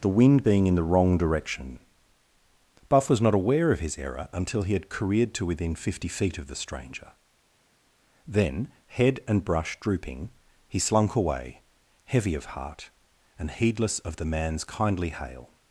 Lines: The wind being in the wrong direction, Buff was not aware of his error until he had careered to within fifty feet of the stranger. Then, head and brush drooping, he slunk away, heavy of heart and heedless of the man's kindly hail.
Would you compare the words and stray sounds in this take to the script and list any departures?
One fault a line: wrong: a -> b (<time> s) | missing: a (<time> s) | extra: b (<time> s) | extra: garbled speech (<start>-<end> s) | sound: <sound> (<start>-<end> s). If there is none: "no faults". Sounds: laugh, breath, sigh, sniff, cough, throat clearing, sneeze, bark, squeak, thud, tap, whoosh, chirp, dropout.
no faults